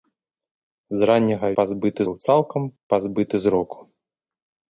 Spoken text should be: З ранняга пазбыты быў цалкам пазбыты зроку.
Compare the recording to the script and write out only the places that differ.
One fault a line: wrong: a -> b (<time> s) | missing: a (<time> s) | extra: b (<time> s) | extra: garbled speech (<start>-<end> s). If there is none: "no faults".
no faults